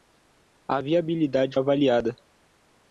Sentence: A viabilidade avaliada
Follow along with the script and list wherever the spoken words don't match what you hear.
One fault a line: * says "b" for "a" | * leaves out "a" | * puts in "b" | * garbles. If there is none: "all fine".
all fine